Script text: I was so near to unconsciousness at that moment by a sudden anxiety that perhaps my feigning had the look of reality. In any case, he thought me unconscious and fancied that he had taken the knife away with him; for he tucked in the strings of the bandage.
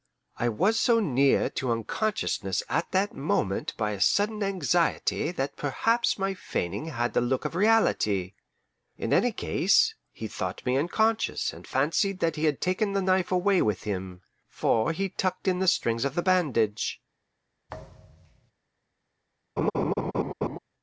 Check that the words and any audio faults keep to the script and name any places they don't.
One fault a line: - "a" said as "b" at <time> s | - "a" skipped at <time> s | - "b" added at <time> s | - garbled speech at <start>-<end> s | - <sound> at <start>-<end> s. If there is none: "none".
- thud at 17.7-18.5 s
- laugh at 19.6-20.6 s